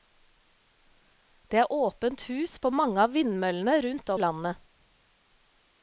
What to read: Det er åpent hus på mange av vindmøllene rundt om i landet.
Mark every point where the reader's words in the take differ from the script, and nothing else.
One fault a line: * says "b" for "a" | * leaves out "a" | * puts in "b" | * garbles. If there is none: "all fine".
* leaves out "om"